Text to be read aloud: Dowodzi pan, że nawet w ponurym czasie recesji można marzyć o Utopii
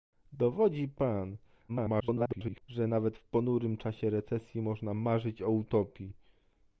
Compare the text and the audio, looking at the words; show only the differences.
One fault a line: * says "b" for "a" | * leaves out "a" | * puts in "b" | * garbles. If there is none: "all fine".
* garbles